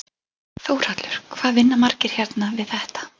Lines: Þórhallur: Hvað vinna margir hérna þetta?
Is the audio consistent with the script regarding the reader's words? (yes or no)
no